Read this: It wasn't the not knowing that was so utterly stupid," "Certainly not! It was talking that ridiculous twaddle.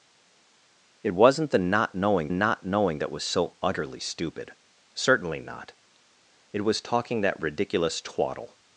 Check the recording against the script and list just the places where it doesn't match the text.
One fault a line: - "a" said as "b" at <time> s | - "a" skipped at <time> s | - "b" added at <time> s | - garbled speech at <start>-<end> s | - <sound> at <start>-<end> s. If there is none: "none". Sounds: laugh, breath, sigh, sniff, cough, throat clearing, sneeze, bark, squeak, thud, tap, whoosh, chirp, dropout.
- "not knowing" added at 2.3 s